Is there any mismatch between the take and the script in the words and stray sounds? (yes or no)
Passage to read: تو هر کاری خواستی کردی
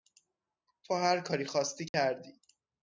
yes